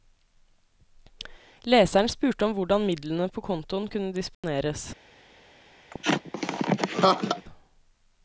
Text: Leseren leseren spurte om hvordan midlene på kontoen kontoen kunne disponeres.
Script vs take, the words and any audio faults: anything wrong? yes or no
yes